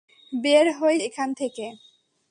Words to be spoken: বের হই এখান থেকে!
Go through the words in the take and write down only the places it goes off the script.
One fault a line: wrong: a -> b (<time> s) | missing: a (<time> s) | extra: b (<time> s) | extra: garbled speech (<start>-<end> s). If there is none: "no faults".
no faults